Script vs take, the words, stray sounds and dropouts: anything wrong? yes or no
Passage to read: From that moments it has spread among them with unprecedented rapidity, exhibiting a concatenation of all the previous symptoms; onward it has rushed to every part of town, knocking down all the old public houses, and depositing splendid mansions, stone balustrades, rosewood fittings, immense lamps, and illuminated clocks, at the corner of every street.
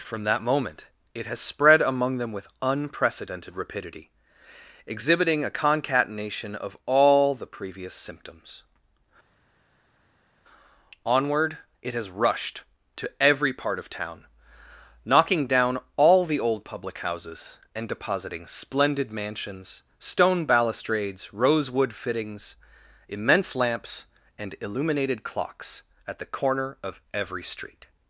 yes